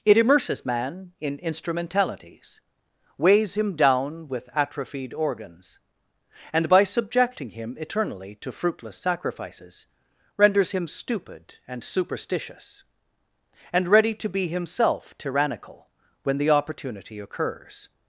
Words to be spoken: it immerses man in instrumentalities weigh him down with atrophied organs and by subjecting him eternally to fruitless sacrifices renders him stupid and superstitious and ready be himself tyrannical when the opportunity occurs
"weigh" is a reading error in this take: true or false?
true